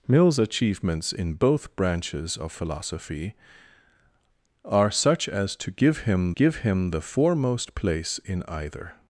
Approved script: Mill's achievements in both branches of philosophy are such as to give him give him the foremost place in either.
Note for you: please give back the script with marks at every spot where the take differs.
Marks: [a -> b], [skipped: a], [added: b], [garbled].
Mill's achievements in both branches of philosophy are such as to give him give him the foremost place in either.